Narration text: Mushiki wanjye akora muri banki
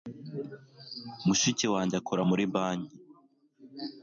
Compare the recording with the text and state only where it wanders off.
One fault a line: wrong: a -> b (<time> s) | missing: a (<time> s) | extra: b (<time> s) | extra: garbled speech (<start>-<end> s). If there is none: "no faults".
no faults